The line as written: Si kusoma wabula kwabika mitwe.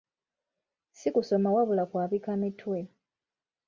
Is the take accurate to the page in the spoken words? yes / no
yes